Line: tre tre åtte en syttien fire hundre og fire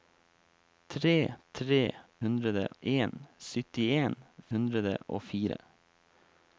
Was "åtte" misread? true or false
true